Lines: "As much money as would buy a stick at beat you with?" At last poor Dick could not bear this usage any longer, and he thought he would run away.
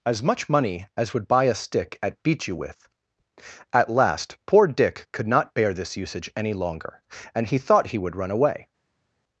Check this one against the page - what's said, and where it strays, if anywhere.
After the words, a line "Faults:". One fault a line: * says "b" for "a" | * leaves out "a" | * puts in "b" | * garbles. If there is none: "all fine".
"As much money as would buy a stick at beat you with?" At last poor Dick could not bear this usage any longer, and he thought he would run away.
Faults:
all fine